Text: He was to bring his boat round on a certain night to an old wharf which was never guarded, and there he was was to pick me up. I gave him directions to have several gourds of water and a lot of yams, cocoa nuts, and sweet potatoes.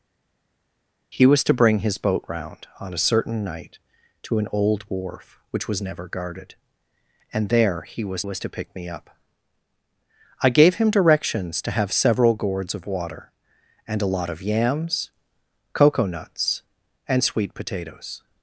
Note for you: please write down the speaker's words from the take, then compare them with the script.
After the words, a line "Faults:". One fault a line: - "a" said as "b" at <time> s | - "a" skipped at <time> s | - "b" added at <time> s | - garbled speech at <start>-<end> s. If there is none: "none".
He was to bring his boat round on a certain night to an old wharf which was never guarded, and there he was was to pick me up. I gave him directions to have several gourds of water and a lot of yams, cocoa nuts, and sweet potatoes.
Faults:
none